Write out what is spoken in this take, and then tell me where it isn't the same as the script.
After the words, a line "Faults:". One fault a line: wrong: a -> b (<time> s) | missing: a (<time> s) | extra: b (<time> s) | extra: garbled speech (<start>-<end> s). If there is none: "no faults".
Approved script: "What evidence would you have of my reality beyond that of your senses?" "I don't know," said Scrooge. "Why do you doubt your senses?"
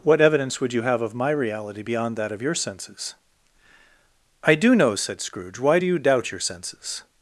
"What evidence would you have of my reality beyond that of your senses?" "I do know," said Scrooge. "Why do you doubt your senses?"
Faults:
wrong: don't -> do (4.6 s)